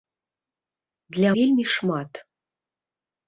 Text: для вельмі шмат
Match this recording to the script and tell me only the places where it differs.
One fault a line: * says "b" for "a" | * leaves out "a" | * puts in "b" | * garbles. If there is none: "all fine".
all fine